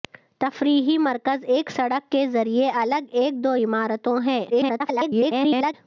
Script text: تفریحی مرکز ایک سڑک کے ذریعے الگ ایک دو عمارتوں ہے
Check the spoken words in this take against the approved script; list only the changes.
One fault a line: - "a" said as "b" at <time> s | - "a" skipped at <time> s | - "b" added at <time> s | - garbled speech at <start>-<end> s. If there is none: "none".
- garbled speech at 4.5-5.7 s